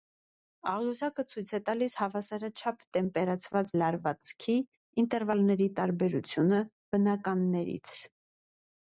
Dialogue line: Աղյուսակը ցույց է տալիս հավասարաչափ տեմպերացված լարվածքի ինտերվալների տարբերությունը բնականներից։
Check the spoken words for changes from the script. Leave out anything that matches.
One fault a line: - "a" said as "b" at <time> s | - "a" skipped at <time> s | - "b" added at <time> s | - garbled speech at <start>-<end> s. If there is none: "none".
none